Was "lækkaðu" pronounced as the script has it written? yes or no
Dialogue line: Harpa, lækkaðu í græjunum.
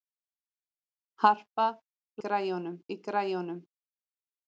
no